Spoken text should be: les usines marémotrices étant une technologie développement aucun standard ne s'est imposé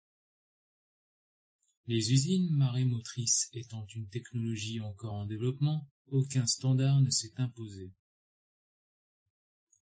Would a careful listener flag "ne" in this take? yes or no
no